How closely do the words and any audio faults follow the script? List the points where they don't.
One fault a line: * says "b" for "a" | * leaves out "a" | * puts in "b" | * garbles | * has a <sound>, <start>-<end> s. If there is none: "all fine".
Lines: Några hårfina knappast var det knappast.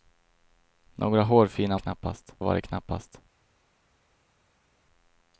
all fine